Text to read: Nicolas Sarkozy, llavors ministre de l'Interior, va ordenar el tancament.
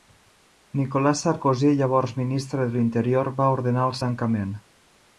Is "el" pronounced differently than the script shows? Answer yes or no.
no